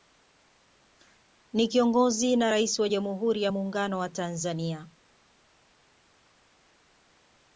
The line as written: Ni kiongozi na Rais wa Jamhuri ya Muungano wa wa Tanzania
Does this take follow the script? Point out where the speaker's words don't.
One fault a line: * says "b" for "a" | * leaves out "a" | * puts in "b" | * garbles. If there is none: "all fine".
* leaves out "wa"